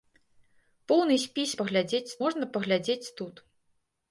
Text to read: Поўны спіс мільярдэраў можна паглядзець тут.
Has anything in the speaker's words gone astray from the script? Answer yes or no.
yes